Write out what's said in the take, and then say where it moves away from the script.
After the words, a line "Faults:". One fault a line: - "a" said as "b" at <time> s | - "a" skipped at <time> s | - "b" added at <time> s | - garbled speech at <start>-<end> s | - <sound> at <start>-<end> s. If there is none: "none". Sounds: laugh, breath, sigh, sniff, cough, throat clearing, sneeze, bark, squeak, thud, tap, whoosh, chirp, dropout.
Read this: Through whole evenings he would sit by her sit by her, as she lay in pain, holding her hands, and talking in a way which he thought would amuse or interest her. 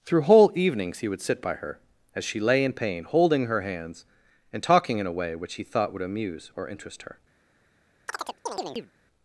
Through whole evenings he would sit by her, as she lay in pain, holding her hands, and talking in a way which he thought would amuse or interest her.
Faults:
- "sit by her" skipped at 1.8 s
- chirp at 8.1-8.9 s